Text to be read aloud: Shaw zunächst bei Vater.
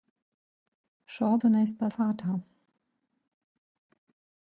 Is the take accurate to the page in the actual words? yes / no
yes